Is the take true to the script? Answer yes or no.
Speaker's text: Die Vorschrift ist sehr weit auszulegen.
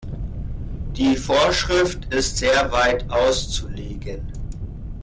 yes